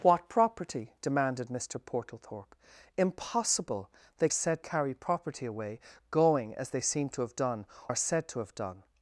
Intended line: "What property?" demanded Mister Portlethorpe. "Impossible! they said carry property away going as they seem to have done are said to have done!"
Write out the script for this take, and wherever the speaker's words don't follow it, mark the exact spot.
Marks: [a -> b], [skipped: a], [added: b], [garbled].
"What property?" demanded Mister Portlethorpe. "Impossible! they said carry property away going as they seem to have done are said to have done!"